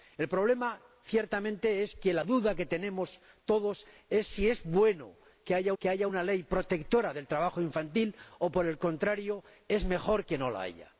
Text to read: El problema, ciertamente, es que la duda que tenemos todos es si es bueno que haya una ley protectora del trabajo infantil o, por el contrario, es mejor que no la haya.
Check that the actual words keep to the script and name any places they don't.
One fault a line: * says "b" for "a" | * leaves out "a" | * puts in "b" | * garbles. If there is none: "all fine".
* puts in "que haya"